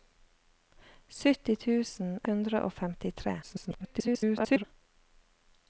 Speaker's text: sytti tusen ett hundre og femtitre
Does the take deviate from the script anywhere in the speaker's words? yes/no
yes